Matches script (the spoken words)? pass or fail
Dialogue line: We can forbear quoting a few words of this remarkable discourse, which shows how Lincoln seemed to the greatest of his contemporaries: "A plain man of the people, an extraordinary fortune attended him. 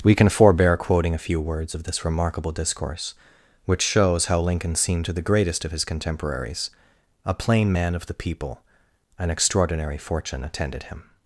pass